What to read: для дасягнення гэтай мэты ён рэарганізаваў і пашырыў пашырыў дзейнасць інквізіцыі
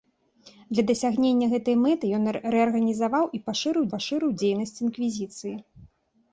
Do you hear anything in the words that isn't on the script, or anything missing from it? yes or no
no